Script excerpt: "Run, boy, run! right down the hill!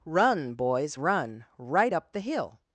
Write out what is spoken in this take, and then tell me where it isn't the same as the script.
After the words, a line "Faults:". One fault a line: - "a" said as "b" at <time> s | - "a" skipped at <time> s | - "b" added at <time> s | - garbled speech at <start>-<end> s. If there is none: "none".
"Run, boys, run! right up the hill!
Faults:
- "boy" said as "boys" at 0.6 s
- "down" said as "up" at 1.9 s